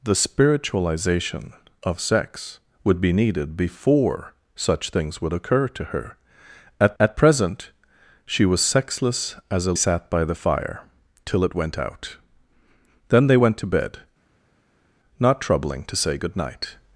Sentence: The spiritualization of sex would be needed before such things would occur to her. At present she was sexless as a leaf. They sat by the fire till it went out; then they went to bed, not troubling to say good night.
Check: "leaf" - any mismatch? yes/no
yes